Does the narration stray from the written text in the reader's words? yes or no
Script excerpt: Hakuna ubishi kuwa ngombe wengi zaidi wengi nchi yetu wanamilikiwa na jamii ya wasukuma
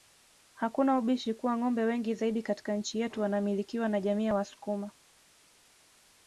yes